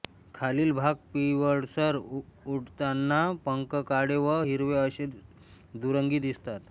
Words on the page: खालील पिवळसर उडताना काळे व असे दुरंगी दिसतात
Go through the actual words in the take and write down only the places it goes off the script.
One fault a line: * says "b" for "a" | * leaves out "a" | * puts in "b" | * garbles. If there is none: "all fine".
* puts in "भाग"
* puts in "पंख"
* puts in "हिरवे"